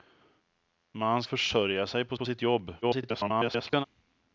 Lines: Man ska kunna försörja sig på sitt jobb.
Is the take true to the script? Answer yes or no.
no